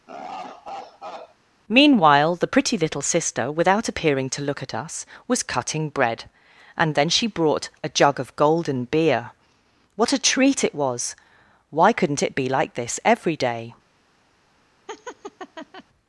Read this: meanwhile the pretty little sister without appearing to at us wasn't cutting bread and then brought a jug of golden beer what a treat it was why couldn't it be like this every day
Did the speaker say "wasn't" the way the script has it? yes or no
no